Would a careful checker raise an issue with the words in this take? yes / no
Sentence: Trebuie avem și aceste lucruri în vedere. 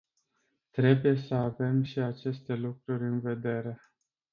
yes